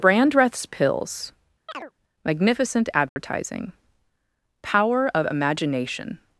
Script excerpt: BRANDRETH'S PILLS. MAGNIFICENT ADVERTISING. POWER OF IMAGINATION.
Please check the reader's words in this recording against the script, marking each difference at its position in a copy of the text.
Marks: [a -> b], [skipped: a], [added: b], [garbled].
BRANDRETH'S PILLS. MAGNIFICENT ADVERTISING. POWER OF IMAGINATION.